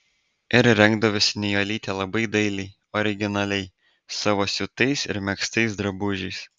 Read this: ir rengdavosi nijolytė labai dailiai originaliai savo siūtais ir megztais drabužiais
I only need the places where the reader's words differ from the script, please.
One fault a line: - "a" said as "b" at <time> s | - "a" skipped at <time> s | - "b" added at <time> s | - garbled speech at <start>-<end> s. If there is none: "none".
none